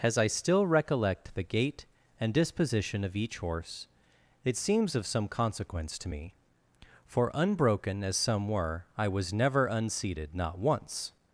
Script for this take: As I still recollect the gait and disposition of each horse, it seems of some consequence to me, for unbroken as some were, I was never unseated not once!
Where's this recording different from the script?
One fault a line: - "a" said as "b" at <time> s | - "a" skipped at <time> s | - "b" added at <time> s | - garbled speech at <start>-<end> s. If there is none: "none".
none